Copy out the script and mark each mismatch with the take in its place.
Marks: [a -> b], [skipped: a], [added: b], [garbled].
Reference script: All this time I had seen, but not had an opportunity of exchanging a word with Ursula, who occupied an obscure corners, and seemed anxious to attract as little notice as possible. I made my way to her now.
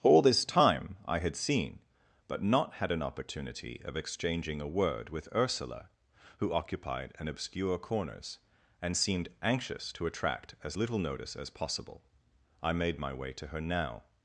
All this time I had seen, but not had an opportunity of exchanging a word with Ursula, who occupied an obscure corners, and seemed anxious to attract as little notice as possible. I made my way to her now.